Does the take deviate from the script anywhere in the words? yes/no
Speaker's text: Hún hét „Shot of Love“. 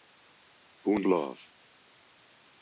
yes